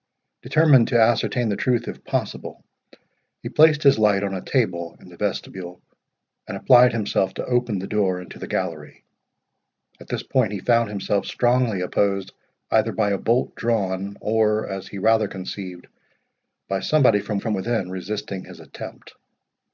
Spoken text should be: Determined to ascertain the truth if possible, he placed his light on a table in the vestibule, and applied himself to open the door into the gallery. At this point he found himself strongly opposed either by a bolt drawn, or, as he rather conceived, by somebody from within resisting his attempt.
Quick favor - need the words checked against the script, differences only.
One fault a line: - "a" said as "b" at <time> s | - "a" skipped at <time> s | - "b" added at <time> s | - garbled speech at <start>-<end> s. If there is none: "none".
- "from" added at 17.4 s